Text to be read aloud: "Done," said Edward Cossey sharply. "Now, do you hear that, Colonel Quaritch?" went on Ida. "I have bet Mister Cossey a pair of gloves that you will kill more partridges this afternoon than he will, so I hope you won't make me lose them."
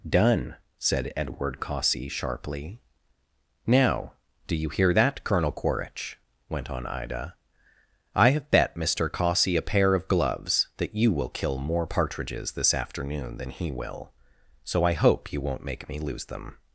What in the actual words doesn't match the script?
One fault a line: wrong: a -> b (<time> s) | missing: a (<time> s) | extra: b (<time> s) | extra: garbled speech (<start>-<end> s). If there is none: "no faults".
no faults